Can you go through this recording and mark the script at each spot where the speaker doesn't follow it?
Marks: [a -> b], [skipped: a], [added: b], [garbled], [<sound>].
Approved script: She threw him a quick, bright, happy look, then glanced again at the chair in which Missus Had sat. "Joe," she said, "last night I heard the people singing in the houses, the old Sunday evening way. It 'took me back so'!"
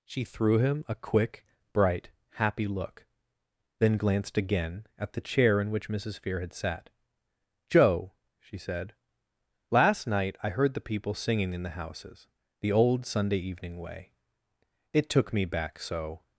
She threw him a quick, bright, happy look, then glanced again at the chair in which Missus [added: Fear] Had sat. "Joe," she said, "last night I heard the people singing in the houses, the old Sunday evening way. It 'took me back so'!"